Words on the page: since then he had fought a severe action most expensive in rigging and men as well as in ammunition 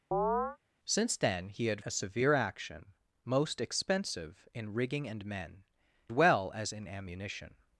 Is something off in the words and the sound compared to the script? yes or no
yes